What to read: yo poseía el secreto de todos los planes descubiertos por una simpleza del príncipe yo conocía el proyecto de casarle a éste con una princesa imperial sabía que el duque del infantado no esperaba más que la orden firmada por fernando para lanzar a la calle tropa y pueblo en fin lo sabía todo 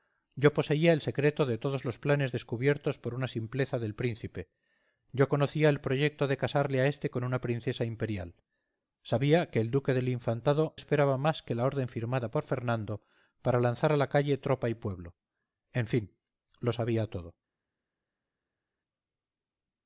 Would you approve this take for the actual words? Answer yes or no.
no